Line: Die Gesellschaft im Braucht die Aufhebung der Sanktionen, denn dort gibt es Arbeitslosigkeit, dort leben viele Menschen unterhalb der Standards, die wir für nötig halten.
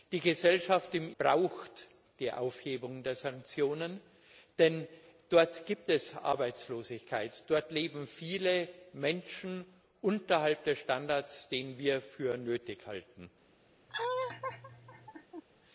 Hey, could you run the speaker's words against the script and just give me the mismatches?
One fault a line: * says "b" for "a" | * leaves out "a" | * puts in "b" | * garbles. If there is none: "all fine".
all fine